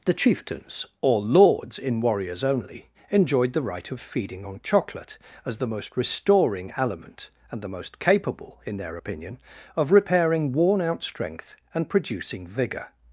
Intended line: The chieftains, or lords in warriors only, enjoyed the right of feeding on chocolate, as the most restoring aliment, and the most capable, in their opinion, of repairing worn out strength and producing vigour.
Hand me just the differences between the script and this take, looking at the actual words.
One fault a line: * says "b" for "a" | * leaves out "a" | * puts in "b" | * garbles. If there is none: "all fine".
all fine